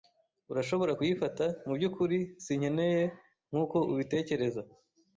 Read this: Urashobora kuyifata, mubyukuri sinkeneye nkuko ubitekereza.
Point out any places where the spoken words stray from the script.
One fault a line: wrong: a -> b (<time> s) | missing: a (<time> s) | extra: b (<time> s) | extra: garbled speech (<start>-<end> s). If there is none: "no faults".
no faults